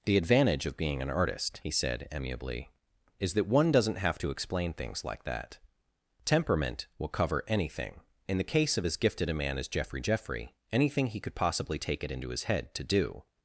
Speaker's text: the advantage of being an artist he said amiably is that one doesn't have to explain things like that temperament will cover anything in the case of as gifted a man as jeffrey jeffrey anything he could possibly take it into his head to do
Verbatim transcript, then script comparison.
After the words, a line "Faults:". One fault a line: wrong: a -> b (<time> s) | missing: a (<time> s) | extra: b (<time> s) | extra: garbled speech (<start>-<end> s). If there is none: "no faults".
the advantage of being an artist he said amiably is that one doesn't have to explain things like that temperament will cover anything in the case of as gifted a man as jeffrey jeffrey anything he could possibly take it into his head to do
Faults:
no faults